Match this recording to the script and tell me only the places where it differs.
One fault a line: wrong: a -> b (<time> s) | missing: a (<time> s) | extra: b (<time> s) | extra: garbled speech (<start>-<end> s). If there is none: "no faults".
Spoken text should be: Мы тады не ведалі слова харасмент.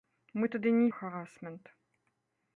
missing: ведалі слова (0.9 s)